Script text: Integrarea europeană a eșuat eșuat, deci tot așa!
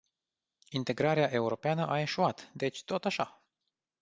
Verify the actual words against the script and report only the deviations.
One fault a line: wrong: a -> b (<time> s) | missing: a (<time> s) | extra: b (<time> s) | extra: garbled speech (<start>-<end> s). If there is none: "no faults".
missing: eșuat (2.5 s)